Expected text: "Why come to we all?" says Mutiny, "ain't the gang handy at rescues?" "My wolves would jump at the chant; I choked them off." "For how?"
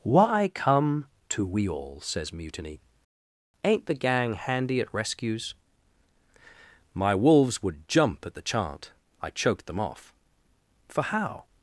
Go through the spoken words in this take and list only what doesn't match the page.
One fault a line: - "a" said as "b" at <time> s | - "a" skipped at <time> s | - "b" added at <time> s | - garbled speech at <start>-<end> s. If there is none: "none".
none